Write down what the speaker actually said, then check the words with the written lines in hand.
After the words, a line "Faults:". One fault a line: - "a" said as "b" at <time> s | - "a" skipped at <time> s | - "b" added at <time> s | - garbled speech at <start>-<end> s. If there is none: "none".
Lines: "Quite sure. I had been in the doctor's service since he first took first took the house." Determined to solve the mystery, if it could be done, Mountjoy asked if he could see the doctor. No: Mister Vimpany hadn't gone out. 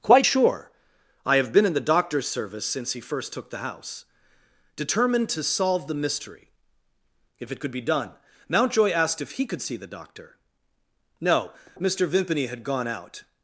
"Quite sure. I have been in the doctor's service since he first took the house." Determined to solve the mystery, if it could be done, Mountjoy asked if he could see the doctor. No: Mister Vimpany had gone out.
Faults:
- "had" said as "have" at 1.4 s
- "first took" skipped at 3.5 s
- "hadn't" said as "had" at 12.5 s